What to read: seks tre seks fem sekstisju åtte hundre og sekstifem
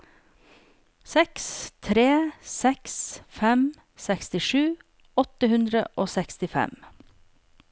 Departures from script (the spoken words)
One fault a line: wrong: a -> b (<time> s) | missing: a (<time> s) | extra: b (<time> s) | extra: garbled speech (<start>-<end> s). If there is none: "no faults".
no faults